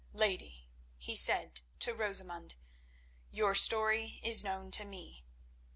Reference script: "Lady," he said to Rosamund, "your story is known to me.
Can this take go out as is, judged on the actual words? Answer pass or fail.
pass